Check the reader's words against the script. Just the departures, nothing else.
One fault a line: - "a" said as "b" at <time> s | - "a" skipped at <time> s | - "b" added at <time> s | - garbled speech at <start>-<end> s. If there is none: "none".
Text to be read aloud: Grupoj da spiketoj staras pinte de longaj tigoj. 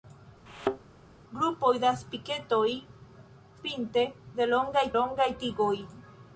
- "staras" skipped at 2.7 s
- "longaj" added at 5.0 s